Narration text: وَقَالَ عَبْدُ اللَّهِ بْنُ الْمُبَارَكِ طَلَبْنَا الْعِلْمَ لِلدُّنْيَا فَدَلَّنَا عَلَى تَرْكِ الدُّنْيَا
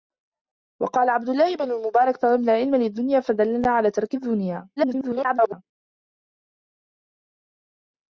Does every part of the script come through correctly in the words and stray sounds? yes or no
no